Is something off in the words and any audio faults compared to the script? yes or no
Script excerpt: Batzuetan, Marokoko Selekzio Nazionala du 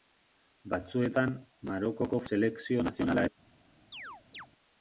yes